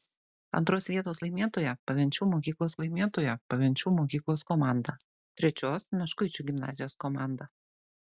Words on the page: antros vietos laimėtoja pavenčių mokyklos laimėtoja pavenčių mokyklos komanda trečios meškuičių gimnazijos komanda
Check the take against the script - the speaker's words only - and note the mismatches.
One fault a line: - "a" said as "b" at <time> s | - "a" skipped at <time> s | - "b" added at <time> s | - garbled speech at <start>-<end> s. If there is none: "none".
none